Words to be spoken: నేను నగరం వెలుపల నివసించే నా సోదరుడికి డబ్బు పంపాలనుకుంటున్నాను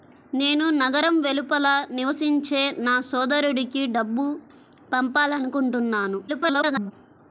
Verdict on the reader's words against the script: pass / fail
fail